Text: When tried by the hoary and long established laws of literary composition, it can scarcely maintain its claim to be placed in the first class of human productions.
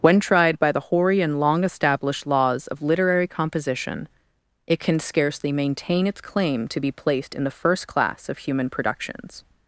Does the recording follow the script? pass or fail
pass